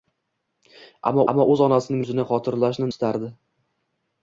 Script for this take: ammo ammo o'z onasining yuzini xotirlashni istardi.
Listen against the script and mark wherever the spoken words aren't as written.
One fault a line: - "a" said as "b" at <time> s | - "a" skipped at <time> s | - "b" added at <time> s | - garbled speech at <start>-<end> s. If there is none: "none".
none